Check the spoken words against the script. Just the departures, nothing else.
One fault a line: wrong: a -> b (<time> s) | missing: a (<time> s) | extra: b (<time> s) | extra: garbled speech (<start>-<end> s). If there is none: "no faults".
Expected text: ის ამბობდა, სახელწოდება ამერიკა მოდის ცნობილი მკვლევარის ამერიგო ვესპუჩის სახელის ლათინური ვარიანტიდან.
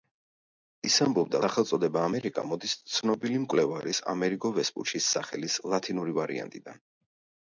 no faults